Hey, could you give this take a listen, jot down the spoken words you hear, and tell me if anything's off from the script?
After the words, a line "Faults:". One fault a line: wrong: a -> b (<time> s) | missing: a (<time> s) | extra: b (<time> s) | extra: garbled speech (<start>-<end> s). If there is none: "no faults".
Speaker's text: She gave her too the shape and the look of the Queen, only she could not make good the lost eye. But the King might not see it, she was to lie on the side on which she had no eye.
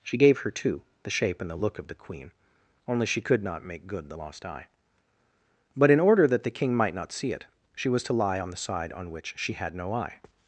She gave her too the shape and the look of the Queen, only she could not make good the lost eye. But in order that the King might not see it, she was to lie on the side on which she had no eye.
Faults:
extra: in order that (5.9 s)